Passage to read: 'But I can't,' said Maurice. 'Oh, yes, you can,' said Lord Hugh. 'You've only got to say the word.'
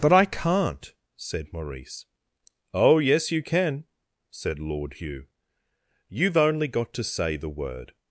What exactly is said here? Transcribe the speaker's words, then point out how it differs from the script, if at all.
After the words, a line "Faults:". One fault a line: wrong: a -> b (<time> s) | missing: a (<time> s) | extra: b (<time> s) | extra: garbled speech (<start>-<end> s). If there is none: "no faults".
'But I can't,' said Maurice. 'Oh, yes, you can,' said Lord Hugh. 'You've only got to say the word.'
Faults:
no faults